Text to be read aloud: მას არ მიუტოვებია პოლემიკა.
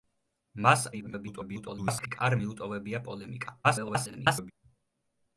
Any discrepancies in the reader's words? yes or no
yes